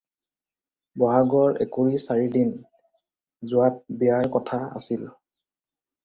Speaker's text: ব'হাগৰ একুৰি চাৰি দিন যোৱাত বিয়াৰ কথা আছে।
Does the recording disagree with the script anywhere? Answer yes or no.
yes